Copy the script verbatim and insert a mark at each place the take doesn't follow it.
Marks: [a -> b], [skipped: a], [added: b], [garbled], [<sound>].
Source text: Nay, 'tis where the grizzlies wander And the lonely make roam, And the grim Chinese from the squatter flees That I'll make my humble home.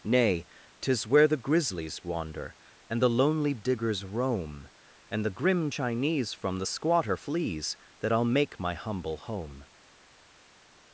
Nay, 'tis where the grizzlies wander And the lonely [make -> diggers] roam, And the grim Chinese from the squatter flees That I'll make my humble home.